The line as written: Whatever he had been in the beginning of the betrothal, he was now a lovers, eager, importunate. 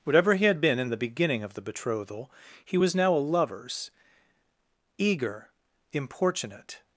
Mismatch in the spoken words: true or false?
false